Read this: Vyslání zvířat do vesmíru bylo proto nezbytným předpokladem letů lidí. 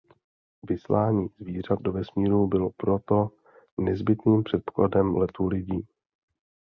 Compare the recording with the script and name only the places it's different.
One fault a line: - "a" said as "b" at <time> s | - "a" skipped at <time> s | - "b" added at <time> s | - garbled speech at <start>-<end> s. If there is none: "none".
none